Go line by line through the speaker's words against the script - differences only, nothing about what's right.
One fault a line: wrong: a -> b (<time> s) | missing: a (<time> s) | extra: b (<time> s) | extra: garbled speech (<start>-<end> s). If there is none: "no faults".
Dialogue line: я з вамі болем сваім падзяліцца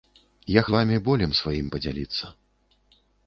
no faults